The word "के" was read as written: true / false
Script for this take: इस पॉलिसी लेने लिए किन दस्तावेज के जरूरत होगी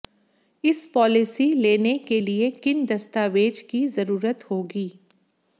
false